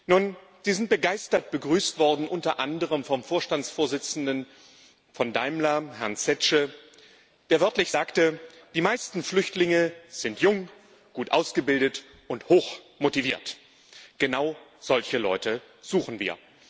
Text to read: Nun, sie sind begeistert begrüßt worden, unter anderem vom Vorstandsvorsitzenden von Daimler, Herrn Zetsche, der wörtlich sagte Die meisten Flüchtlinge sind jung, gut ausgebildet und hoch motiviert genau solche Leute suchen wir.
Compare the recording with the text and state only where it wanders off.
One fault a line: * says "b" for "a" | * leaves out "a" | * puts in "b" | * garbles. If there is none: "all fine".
all fine